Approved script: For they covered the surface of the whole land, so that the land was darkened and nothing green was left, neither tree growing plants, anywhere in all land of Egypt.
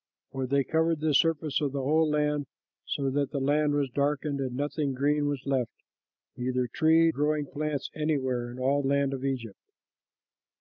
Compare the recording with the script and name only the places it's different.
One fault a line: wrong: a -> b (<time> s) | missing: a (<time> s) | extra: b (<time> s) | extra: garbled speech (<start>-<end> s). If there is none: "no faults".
no faults